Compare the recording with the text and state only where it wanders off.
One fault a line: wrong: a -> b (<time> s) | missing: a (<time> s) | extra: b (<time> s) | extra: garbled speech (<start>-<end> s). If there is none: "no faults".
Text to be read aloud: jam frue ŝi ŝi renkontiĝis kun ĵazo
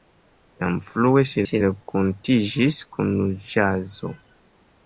no faults